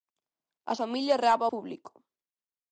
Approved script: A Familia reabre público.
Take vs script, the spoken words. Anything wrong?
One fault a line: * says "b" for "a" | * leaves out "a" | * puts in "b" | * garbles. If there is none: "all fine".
all fine